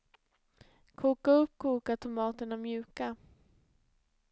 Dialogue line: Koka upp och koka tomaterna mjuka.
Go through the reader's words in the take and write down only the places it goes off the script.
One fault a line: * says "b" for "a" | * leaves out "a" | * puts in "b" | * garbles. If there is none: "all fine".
* leaves out "och"